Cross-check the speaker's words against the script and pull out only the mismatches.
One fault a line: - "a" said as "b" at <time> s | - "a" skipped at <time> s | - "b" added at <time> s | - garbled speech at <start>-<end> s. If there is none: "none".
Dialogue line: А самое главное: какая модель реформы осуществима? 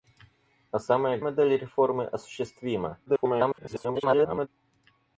- "главное какая" skipped at 1.2 s
- garbled speech at 3.1-4.5 s